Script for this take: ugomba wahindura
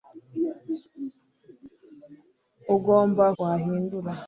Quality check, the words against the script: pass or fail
pass